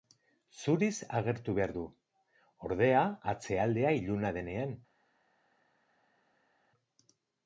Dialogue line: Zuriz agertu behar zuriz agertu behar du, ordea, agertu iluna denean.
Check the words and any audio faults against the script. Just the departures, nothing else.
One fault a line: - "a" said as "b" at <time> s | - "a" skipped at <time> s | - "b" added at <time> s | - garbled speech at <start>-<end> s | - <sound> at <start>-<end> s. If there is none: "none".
- "zuriz agertu behar" skipped at 1.7 s
- "agertu" said as "atzealdea" at 3.3 s